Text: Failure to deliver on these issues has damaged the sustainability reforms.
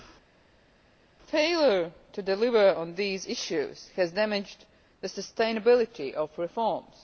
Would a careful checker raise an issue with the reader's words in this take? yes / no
yes